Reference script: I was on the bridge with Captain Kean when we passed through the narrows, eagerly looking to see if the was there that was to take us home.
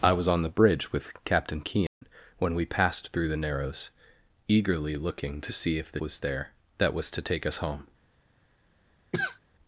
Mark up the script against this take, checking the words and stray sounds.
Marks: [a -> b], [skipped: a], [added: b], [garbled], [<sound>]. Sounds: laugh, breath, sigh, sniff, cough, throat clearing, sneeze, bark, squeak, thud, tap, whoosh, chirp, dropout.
I was on the bridge with Captain Kean [dropout] when we passed through the narrows, eagerly looking to see if the was there that was to take us home. [cough]